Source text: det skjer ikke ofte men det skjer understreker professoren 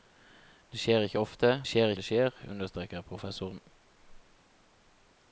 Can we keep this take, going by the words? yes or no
no